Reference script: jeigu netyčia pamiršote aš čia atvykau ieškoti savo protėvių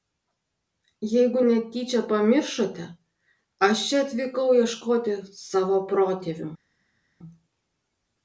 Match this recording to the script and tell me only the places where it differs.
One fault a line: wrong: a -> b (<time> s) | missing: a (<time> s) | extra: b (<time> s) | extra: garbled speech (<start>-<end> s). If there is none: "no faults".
no faults